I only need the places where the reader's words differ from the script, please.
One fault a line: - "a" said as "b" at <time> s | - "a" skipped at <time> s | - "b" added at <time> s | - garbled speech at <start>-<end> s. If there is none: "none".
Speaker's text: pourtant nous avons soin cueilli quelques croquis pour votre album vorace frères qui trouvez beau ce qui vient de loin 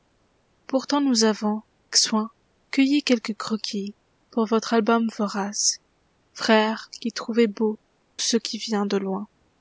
none